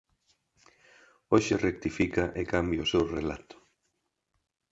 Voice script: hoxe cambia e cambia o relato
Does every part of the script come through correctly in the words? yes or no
no